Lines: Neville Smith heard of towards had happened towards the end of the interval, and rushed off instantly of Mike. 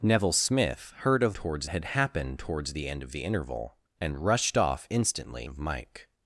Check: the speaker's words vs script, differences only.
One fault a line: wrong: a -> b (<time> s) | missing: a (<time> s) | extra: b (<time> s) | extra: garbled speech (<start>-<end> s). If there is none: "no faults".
no faults